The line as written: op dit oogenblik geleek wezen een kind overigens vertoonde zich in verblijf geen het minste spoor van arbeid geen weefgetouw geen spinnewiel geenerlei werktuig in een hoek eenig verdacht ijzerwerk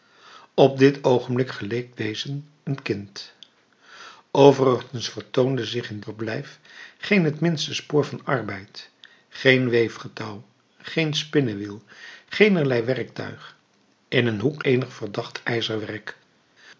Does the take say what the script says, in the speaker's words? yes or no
yes